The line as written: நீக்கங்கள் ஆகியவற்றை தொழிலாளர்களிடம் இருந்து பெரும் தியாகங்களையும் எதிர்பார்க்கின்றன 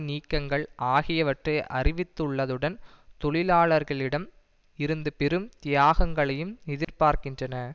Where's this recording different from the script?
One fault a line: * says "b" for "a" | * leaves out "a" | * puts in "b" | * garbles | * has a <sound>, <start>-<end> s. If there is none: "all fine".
* puts in "அறிவித்துள்ளதுடன்"
* has a dropout, 6.8-6.9 s